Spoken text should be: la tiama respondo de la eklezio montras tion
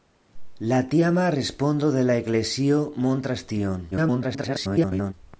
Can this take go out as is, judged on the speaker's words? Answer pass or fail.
fail